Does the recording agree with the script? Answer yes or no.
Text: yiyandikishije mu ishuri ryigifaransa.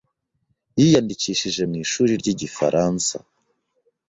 yes